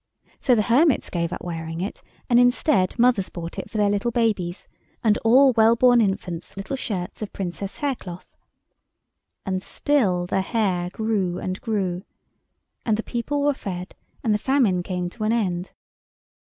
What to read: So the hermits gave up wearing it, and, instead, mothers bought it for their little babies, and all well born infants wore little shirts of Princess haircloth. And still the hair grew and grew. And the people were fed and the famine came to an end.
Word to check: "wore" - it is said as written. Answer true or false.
false